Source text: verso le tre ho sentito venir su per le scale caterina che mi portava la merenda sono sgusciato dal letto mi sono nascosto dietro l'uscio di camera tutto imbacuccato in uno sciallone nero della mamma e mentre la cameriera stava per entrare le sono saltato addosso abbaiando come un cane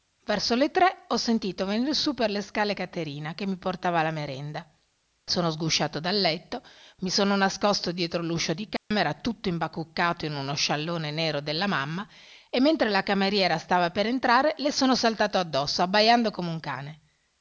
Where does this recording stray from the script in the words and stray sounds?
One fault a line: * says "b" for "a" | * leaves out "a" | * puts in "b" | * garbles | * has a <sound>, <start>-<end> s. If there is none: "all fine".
* has a dropout, 8.8-8.9 s